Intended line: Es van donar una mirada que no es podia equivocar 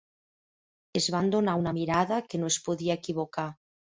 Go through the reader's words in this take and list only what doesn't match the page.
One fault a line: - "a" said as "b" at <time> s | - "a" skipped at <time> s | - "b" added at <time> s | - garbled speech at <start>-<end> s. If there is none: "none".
none